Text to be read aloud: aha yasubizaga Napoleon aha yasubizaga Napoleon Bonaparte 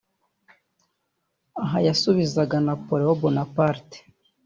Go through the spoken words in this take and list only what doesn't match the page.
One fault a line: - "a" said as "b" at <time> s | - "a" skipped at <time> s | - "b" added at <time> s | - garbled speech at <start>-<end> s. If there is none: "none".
- "aha yasubizaga Napoleon" skipped at 3.2 s